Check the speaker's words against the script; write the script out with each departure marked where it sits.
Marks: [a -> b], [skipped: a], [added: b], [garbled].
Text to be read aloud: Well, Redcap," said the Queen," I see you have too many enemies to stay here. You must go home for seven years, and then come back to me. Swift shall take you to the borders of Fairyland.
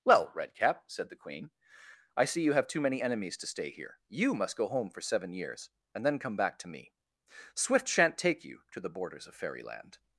Well, Redcap," said the Queen," I see you have too many enemies to stay here. You must go home for seven years, and then come back to me. Swift [shall -> shan't] take you to the borders of Fairyland.